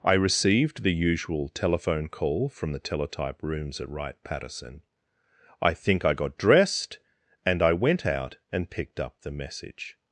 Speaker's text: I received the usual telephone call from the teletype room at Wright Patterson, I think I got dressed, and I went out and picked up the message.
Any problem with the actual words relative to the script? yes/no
yes